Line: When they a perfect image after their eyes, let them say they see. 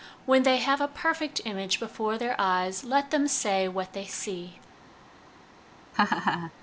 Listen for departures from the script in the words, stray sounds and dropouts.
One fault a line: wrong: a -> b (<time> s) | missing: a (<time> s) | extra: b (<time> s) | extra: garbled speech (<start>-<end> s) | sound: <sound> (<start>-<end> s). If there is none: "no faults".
extra: have (0.6 s)
wrong: after -> before (1.8 s)
extra: what (3.7 s)
sound: laugh (5.9-6.5 s)